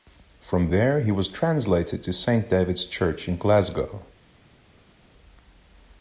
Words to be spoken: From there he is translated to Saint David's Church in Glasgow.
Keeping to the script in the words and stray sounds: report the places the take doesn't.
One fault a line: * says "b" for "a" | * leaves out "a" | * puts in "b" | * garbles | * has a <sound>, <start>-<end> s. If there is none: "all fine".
* says "was" for "is"